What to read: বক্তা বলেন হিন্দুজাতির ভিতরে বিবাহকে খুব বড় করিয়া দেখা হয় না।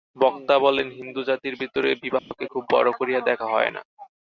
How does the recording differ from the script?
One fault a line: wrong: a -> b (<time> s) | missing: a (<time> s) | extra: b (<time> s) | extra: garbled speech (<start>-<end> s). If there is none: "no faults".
no faults